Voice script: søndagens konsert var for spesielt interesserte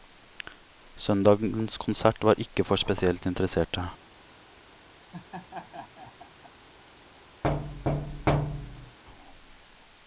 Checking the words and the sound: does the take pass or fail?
fail